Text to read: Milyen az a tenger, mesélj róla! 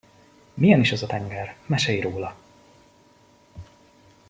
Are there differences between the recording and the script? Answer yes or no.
yes